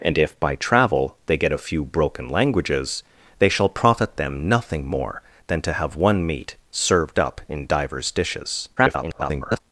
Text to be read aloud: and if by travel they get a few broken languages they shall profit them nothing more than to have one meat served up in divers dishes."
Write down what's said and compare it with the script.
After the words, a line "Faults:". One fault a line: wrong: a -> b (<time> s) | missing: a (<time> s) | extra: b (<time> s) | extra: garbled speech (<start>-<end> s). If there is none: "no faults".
and if by travel they get a few broken languages they shall profit them nothing more than to have one meat served up in divers dishes." [garbled]
Faults:
extra: garbled speech (8.8-9.6 s)